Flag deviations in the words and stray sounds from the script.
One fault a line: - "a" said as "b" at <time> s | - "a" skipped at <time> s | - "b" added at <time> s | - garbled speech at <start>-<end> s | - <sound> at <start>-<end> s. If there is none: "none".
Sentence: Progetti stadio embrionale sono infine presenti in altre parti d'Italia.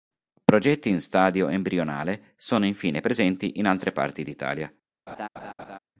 - "in" added at 0.9 s
- laugh at 5.1-5.8 s